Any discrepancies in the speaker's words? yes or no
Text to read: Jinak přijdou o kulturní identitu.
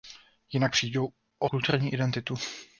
no